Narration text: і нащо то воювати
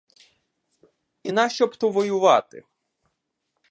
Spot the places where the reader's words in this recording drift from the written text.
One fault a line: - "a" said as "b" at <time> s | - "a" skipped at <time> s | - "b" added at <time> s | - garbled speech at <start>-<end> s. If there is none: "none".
- "б" added at 1.7 s